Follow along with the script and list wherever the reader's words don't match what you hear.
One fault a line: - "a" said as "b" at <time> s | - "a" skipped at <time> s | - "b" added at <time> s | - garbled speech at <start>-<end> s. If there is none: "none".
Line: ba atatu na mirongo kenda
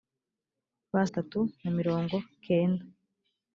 none